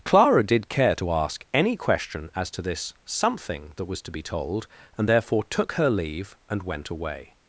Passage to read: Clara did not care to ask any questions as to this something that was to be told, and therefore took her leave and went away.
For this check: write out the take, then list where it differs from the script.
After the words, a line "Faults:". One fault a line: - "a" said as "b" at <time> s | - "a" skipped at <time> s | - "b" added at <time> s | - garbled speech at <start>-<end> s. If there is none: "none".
Clara did care to ask any question as to this something that was to be told, and therefore took her leave and went away.
Faults:
- "not" skipped at 0.7 s
- "questions" said as "question" at 1.8 s